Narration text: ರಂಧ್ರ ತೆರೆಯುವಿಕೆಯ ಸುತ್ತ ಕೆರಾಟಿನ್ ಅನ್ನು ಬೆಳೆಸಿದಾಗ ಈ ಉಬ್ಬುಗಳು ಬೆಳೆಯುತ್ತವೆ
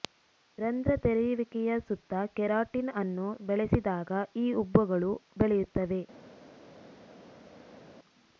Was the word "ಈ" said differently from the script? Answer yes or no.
no